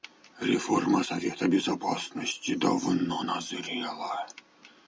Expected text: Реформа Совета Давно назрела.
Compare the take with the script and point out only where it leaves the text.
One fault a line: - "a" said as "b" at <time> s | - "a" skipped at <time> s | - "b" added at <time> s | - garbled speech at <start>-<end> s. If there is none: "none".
- "Безопасности" added at 1.5 s